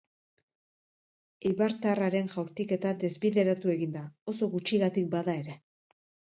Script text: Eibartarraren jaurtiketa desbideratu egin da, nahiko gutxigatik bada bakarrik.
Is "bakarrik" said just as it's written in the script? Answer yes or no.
no